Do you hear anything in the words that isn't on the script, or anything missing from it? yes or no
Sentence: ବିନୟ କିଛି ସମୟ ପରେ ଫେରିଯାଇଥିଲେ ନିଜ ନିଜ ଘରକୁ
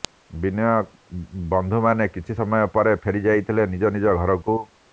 yes